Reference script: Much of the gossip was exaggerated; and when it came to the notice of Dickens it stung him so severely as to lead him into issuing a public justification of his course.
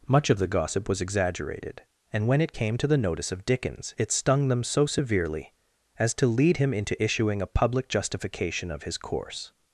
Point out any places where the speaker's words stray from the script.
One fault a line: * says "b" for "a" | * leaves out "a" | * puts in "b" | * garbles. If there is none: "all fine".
* says "them" for "him"